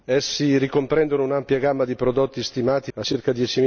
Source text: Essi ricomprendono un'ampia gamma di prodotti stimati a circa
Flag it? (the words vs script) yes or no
no